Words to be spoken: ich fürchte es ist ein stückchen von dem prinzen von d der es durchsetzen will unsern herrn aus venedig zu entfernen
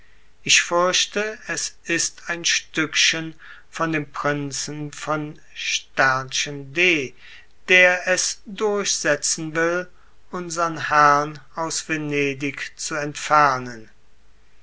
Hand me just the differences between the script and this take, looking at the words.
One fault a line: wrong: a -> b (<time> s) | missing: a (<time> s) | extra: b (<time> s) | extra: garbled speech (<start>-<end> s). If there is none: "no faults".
no faults